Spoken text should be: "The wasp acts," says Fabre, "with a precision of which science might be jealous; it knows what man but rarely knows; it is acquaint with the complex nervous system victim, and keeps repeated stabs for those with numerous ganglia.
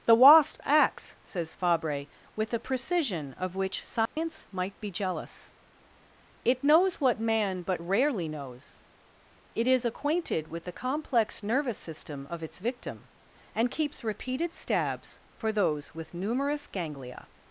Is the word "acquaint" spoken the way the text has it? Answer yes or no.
no